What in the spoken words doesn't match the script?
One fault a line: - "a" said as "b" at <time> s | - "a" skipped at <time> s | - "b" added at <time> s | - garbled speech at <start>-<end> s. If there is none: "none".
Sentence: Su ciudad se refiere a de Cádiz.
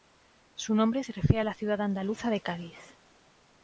- "ciudad" said as "nombre" at 0.7 s
- "la ciudad andaluza" added at 1.4 s